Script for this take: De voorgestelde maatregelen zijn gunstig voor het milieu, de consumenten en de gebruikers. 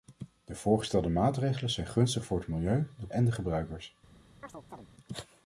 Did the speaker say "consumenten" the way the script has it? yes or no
no